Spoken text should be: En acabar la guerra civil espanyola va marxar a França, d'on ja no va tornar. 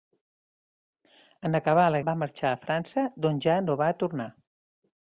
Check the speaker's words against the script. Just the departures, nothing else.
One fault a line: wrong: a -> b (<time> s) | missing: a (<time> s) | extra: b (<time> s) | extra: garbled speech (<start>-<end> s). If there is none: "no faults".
missing: guerra civil espanyola (2.0 s)